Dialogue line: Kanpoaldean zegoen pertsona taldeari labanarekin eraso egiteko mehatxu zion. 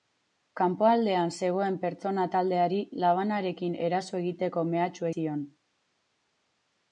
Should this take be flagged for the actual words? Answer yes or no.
no